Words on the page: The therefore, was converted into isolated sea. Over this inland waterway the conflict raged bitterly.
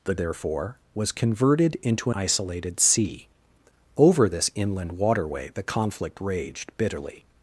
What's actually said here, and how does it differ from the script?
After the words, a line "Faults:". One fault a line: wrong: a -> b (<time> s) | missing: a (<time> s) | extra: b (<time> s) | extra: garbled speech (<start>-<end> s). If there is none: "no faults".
The therefore, was converted into isolated sea. Over this inland waterway the conflict raged bitterly.
Faults:
no faults